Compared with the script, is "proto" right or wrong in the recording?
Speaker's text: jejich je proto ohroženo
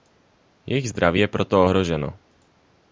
right